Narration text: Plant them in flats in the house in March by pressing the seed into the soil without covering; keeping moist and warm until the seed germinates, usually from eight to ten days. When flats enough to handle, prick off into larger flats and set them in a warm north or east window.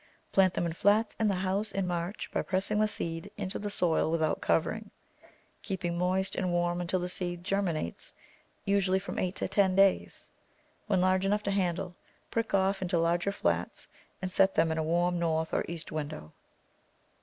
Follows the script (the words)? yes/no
no